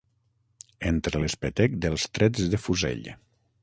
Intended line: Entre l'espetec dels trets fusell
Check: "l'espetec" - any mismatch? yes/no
no